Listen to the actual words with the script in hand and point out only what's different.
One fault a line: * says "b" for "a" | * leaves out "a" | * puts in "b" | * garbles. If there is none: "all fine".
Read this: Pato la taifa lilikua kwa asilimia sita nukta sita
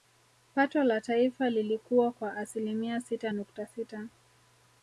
all fine